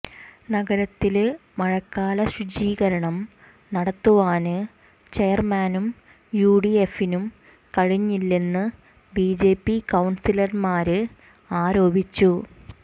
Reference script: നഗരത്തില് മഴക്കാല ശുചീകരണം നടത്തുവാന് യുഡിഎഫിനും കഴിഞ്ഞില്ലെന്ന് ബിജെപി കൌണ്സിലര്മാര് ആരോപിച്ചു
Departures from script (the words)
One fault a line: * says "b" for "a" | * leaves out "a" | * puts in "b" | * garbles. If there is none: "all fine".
* puts in "ചെയര്മാനും"